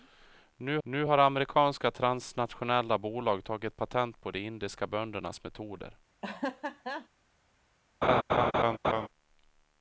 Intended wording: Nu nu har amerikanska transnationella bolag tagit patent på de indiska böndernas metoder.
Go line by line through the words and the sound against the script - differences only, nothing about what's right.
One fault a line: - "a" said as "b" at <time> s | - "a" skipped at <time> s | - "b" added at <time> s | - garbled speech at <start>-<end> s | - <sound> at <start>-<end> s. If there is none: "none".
- laugh at 6.2-7.1 s
- laugh at 8.0-9.1 s